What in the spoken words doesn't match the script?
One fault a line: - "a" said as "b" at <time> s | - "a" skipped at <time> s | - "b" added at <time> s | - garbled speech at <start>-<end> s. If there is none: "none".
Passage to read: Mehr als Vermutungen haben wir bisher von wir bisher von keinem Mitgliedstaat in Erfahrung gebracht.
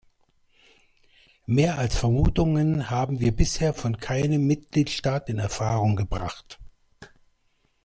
- "wir bisher von" skipped at 4.0 s